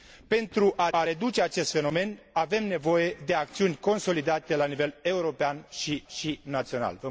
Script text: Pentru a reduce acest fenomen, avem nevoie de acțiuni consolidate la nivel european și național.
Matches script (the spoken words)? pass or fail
fail